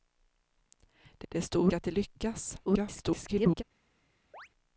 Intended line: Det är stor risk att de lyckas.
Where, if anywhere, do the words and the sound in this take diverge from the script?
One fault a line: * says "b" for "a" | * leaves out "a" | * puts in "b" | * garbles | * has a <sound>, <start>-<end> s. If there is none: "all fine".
* puts in "det"
* leaves out "risk"
* garbles
* has a chirp, 4.3-4.5 s